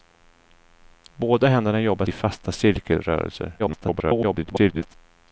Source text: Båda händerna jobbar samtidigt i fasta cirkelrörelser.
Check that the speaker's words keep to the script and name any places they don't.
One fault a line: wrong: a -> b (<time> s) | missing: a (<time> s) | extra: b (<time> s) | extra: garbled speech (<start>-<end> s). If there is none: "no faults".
missing: samtidigt (2.0 s)
extra: garbled speech (3.6-4.9 s)